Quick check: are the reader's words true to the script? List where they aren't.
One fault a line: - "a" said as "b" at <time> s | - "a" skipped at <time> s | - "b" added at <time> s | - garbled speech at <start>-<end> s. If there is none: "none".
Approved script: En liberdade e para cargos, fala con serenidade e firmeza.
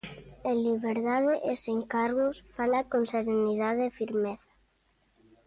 - "para" said as "sen" at 1.6 s